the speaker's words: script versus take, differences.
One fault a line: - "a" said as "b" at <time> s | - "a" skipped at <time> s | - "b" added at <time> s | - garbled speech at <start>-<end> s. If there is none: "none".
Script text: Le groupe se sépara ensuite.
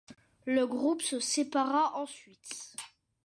none